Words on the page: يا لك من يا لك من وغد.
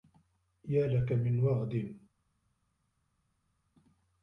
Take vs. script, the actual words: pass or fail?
fail